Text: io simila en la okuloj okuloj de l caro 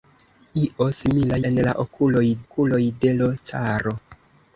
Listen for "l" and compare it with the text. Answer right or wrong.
right